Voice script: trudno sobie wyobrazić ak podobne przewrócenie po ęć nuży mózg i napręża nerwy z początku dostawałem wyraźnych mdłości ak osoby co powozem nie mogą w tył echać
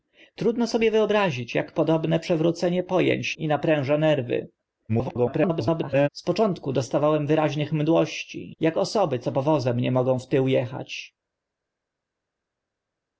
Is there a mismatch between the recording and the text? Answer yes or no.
yes